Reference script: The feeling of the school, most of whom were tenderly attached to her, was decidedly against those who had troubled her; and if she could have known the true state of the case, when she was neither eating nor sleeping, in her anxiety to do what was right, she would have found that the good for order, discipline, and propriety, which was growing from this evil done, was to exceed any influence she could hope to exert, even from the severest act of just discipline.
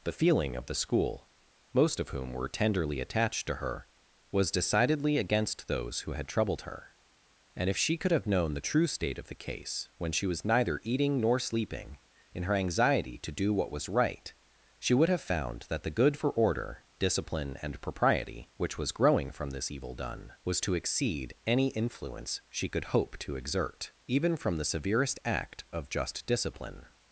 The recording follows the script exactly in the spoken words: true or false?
true